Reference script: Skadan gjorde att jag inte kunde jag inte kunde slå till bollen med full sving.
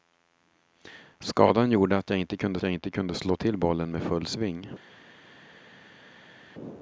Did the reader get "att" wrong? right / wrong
right